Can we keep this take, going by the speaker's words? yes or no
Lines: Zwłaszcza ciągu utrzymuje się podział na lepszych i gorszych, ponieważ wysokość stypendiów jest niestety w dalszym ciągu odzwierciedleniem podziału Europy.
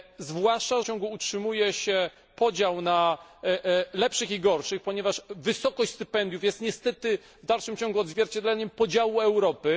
yes